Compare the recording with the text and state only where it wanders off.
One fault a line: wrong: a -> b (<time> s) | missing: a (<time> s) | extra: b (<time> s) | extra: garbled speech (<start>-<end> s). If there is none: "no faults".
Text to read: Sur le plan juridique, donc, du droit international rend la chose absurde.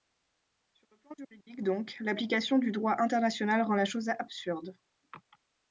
extra: l'application (2.0 s)